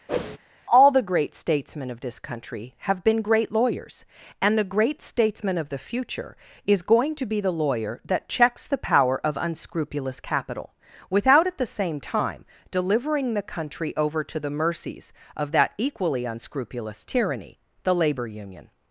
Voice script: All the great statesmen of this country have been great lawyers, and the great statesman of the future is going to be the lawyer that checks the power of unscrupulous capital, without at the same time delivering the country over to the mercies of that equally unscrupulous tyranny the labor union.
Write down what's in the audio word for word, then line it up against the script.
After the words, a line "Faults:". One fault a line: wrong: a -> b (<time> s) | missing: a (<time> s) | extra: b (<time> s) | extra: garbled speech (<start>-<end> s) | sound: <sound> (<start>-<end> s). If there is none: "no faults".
All the great statesmen of this country have been great lawyers, and the great statesman of the future is going to be the lawyer that checks the power of unscrupulous capital, without at the same time delivering the country over to the mercies of that equally unscrupulous tyranny the labor union.
Faults:
sound: whoosh (0.1-0.4 s)